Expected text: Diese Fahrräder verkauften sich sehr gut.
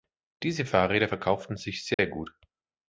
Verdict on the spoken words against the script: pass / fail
pass